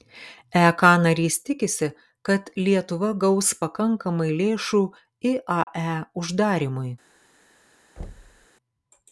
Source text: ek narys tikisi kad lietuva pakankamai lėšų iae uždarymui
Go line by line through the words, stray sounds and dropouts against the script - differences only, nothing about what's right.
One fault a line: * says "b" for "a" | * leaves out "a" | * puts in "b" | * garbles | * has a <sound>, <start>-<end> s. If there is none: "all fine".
* puts in "gaus"
* has a dropout, 5.6-5.7 s
* has a thud, 8.0-8.5 s